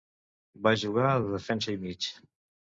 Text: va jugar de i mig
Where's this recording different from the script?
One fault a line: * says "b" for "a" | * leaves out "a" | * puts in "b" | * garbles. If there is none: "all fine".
* puts in "defensa"